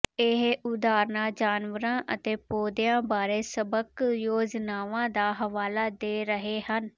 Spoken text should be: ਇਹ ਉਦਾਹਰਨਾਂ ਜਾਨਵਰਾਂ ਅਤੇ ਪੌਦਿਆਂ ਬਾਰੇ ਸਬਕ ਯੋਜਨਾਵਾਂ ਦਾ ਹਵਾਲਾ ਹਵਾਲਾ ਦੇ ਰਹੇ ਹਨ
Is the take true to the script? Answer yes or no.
no